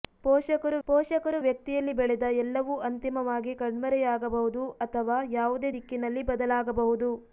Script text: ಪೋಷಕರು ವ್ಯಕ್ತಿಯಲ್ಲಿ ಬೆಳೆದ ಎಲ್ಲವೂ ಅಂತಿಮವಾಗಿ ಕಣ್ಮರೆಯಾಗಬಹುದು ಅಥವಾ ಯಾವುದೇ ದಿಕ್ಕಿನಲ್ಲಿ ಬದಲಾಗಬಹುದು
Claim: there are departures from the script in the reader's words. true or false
true